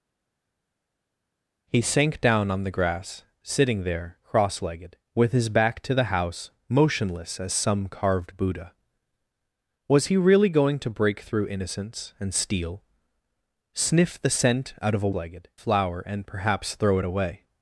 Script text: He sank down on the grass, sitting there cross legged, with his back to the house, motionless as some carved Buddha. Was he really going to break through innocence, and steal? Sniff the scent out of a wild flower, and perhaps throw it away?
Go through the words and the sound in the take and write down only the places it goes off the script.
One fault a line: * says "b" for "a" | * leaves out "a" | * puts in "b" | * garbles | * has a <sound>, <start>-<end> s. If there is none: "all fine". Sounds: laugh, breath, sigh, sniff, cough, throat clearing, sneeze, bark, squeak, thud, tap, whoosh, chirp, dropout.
* says "legged" for "wild"